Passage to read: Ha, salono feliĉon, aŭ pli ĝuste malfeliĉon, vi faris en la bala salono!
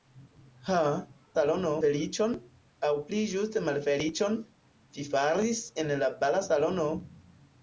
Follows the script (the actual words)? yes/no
yes